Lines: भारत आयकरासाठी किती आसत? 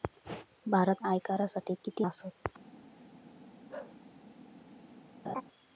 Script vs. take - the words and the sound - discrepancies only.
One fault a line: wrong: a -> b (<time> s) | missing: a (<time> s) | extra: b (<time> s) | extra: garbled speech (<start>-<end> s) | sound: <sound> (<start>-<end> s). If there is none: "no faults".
sound: bark (3.7-4.0 s)
sound: laugh (5.2-5.4 s)